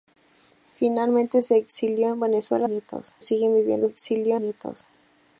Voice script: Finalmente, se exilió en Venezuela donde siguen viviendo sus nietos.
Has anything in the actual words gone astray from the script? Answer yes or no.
yes